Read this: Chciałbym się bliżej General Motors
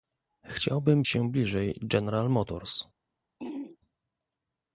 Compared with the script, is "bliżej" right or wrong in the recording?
right